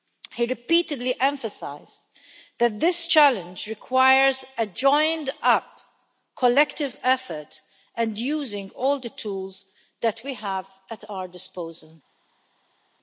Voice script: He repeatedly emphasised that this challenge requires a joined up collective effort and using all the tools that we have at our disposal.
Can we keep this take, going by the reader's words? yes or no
yes